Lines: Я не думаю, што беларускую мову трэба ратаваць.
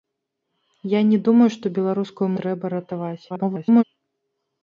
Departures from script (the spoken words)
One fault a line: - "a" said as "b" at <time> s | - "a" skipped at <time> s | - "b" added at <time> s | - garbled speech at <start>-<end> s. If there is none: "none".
- "мову" skipped at 2.3 s
- garbled speech at 3.3-3.8 s